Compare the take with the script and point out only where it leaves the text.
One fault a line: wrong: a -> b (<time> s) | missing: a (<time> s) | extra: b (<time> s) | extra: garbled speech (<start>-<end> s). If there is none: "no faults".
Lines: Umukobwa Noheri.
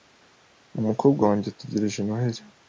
extra: wanjye ategereje (1.3 s)